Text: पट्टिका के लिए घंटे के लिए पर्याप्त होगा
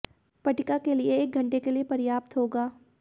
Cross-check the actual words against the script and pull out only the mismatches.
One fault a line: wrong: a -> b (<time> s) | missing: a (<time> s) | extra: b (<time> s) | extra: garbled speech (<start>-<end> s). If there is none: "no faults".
extra: एक (1.2 s)